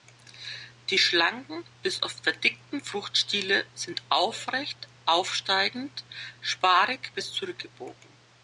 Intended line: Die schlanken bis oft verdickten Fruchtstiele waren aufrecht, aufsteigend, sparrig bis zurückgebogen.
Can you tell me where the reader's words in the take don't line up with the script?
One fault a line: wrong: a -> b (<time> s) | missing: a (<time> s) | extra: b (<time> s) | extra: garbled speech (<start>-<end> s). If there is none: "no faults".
wrong: waren -> sind (3.7 s)